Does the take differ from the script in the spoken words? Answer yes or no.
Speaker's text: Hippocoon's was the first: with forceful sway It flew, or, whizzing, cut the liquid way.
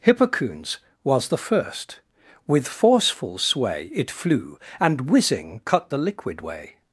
yes